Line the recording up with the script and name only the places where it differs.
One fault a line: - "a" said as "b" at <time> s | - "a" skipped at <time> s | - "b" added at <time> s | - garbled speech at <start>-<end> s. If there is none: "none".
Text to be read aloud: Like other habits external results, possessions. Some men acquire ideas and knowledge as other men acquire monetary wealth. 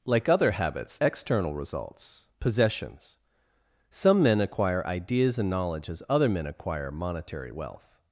none